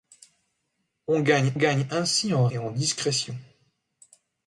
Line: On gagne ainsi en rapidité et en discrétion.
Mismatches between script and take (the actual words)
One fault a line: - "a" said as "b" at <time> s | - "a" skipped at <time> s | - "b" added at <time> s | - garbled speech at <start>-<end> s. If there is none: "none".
- "gagne" added at 1.5 s
- "rapidité" skipped at 2.5 s